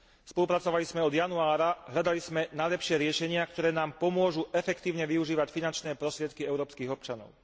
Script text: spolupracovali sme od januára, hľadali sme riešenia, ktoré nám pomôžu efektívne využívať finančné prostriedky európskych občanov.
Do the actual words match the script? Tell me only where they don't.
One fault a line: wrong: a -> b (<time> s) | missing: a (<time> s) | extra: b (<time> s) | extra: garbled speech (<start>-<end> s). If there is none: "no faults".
extra: najlepšie (2.5 s)